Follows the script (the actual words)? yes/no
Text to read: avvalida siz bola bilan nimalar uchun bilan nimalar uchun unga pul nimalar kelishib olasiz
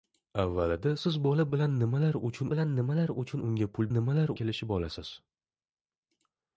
yes